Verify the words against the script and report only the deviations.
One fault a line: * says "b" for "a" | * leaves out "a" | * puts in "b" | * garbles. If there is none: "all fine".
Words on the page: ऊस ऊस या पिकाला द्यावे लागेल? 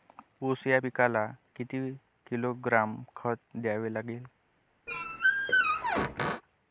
* leaves out "ऊस"
* puts in "किती किलोग्रॅम खत"